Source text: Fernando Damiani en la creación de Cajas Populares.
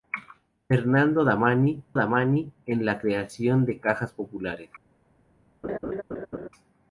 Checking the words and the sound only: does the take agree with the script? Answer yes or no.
no